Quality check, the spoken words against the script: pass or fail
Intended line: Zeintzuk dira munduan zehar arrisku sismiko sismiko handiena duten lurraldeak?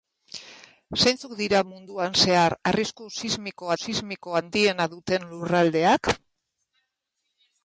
pass